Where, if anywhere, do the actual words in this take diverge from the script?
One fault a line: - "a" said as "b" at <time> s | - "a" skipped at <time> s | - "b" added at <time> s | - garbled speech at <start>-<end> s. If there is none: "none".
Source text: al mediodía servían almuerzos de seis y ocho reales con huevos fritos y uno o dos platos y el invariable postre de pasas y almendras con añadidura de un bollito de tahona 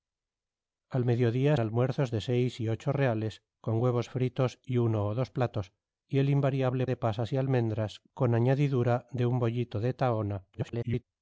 - "servían" skipped at 1.6 s
- "postre" skipped at 6.9 s
- garbled speech at 10.5-11.0 s